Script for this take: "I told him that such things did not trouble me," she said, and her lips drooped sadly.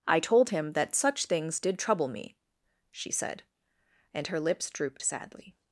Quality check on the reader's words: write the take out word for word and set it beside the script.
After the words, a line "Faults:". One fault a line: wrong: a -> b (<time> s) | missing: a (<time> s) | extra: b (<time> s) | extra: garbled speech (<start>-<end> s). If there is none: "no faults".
"I told him that such things did trouble me," she said, and her lips drooped sadly.
Faults:
missing: not (1.8 s)